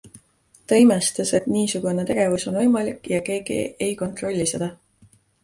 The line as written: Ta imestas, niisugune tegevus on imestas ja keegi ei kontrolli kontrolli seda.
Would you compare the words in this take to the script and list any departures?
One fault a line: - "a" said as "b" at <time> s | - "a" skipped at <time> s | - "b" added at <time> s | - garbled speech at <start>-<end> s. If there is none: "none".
- "et" added at 1.4 s
- "imestas" said as "võimalik" at 2.6 s
- "kontrolli" skipped at 4.5 s